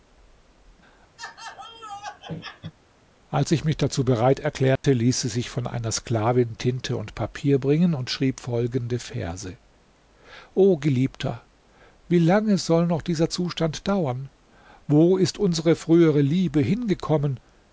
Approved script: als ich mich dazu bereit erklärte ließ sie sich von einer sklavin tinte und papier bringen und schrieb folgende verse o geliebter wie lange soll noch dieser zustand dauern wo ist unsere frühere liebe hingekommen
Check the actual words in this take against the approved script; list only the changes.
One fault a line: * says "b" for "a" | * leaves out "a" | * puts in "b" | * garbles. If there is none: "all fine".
all fine